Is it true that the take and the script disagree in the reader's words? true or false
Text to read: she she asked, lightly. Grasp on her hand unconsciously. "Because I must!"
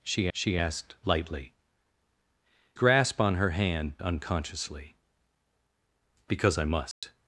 false